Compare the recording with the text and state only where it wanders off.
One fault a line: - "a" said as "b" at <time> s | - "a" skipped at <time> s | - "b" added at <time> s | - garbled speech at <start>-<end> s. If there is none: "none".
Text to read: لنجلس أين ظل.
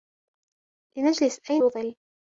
none